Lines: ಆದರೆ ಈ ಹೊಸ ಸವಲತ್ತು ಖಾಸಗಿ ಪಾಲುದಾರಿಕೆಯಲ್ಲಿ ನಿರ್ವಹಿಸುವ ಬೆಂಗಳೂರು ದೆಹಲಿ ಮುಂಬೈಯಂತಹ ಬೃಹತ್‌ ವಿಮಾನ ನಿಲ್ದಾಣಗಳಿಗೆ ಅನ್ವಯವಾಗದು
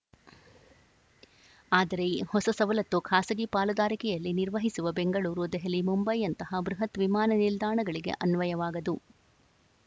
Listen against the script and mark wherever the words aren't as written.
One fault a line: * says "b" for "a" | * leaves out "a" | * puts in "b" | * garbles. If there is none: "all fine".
all fine